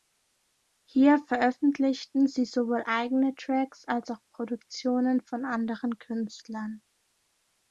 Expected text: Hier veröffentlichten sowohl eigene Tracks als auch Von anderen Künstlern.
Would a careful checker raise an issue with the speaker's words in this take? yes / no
yes